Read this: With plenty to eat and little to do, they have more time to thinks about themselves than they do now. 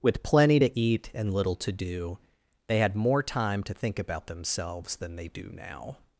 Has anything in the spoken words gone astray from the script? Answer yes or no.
yes